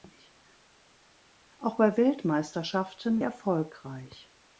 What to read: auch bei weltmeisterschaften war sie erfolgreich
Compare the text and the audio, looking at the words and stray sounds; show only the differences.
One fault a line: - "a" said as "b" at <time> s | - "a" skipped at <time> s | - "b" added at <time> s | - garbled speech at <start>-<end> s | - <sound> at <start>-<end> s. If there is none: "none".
- "war sie" skipped at 3.2 s